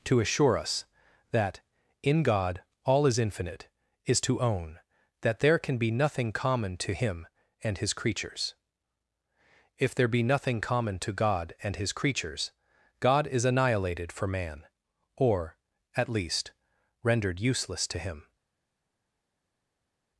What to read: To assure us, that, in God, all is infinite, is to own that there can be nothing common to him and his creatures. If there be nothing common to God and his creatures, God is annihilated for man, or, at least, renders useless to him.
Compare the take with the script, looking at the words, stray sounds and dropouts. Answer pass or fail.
fail